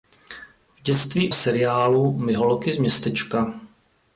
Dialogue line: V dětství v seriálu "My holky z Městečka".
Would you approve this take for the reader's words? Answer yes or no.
yes